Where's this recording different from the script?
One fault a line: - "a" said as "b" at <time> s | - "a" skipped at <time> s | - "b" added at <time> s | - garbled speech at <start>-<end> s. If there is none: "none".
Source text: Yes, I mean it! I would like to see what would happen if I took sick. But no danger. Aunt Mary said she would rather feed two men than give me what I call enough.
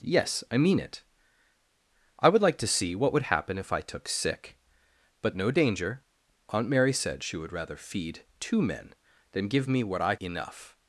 - "call" skipped at 10.2 s